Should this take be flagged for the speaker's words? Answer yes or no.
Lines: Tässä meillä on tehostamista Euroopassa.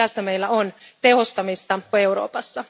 no